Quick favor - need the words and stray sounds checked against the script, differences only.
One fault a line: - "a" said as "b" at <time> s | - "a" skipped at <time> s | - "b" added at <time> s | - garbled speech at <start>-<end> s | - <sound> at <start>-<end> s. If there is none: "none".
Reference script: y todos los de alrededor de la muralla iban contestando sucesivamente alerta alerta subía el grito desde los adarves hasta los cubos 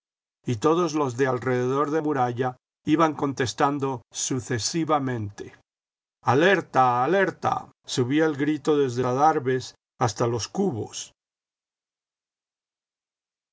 - "la" skipped at 2.0 s
- "los" skipped at 9.0 s